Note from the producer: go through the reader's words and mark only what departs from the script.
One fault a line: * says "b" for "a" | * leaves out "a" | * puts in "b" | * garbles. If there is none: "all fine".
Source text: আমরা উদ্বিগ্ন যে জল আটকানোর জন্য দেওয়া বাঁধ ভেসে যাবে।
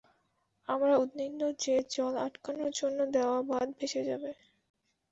all fine